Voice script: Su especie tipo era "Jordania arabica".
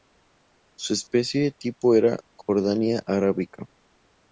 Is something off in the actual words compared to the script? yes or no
no